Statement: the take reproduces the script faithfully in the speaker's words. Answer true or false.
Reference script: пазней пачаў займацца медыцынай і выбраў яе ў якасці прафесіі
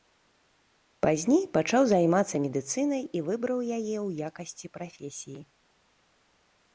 true